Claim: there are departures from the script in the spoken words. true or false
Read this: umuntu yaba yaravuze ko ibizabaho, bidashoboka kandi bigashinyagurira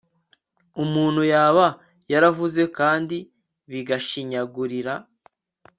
true